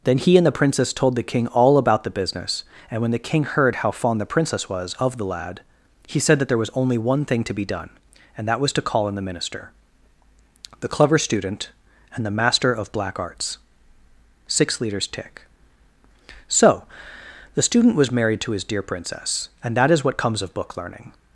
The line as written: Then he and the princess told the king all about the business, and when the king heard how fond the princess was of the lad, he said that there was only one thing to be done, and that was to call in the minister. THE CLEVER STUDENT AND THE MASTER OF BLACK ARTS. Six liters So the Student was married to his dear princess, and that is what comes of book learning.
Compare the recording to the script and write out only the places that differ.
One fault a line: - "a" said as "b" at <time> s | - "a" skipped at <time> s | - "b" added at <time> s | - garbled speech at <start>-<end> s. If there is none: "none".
- "tick" added at 15.1 s